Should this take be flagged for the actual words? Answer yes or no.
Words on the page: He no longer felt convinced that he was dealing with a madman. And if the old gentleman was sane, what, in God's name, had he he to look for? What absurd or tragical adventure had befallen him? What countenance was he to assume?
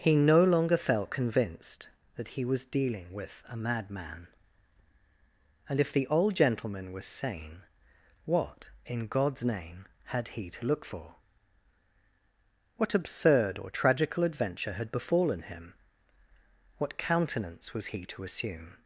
yes